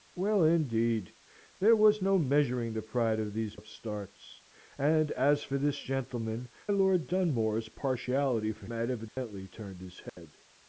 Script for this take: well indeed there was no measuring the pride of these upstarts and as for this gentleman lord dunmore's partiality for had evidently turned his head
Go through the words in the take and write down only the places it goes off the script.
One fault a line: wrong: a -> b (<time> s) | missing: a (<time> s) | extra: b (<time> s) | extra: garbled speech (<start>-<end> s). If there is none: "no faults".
no faults